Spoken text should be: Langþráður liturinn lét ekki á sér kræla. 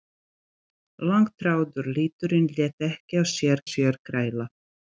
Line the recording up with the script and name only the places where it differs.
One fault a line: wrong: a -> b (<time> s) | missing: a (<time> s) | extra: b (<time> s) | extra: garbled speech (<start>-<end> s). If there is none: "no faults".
extra: sér (3.7 s)